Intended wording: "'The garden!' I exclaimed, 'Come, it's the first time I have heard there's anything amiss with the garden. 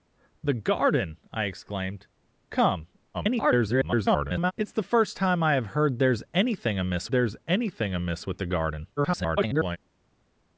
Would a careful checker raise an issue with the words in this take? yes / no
yes